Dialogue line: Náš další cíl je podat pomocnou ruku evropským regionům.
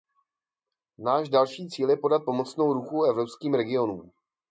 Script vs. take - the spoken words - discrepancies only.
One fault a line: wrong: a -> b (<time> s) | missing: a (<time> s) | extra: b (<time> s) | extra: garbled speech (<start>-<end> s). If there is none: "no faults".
no faults